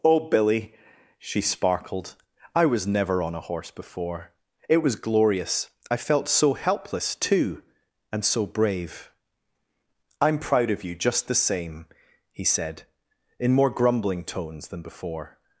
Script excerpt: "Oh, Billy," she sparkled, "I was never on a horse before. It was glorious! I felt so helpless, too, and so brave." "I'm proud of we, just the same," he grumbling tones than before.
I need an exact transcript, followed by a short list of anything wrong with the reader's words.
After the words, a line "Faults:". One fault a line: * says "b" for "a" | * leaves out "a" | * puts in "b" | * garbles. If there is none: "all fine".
"Oh, Billy," she sparkled, "I was never on a horse before. It was glorious! I felt so helpless, too, and so brave." "I'm proud of you, just the same," he said, in more grumbling tones than before.
Faults:
* says "you" for "we"
* puts in "said in more"